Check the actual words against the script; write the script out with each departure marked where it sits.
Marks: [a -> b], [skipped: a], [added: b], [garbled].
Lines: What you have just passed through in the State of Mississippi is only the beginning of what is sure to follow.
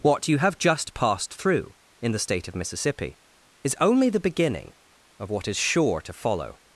What you have just passed through in the State of Mississippi is only the beginning of what is sure to follow.